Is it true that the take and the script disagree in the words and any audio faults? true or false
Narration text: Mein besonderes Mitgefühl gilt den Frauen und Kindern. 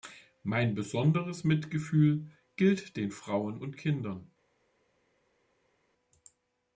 false